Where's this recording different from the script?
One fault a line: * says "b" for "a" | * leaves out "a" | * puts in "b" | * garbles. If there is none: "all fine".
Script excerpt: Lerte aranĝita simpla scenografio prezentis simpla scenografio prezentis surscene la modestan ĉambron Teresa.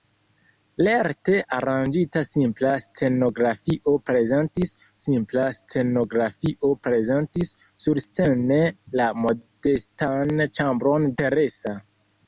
all fine